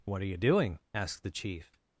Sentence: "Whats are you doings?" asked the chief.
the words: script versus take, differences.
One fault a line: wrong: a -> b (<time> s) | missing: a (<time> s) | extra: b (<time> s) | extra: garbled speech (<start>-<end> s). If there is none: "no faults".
wrong: Whats -> What (0.1 s)
wrong: doings -> doing (0.4 s)